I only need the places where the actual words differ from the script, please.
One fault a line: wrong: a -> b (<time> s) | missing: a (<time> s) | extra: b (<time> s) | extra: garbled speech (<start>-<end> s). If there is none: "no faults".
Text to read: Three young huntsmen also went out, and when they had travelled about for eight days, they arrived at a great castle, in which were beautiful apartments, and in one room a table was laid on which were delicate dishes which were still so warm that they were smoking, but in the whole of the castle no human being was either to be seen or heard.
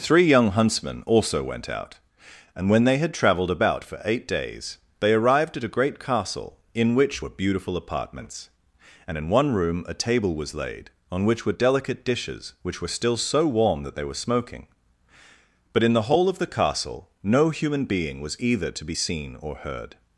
no faults